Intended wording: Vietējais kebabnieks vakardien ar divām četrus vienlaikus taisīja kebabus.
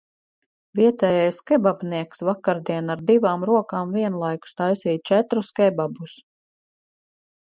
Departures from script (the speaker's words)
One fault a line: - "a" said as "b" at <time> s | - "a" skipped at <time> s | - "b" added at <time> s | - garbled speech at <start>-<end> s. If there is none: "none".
- "četrus" said as "rokām" at 3.5 s
- "četrus" added at 5.1 s